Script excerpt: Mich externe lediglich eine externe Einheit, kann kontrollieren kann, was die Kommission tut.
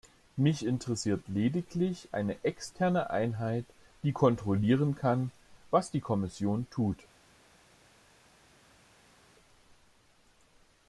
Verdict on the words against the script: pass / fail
fail